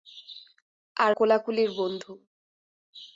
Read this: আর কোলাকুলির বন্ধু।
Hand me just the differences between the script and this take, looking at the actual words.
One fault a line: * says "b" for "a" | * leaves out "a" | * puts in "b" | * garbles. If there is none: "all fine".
all fine